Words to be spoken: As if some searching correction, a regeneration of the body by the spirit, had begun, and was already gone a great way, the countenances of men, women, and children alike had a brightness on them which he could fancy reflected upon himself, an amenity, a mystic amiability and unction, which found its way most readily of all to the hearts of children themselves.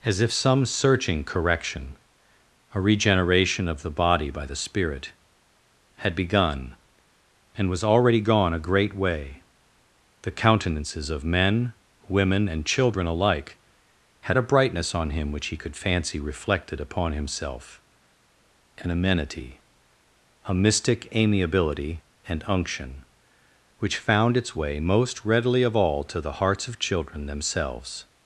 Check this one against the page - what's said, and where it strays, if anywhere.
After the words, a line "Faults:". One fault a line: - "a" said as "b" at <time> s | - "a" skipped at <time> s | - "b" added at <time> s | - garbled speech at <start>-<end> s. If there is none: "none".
As if some searching correction, a regeneration of the body by the spirit, had begun, and was already gone a great way, the countenances of men, women, and children alike had a brightness on him which he could fancy reflected upon himself, an amenity, a mystic amiability and unction, which found its way most readily of all to the hearts of children themselves.
Faults:
- "them" said as "him" at 15.1 s